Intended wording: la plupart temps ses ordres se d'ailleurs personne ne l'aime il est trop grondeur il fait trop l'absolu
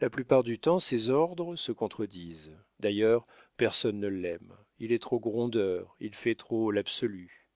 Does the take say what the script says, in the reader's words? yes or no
no